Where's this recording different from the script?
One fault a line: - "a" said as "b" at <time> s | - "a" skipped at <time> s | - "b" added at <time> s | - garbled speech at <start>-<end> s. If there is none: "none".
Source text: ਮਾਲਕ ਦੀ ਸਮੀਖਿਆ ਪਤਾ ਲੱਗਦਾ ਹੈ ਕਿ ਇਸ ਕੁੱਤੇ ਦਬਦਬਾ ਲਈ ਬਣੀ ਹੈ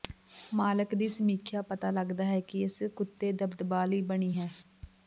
none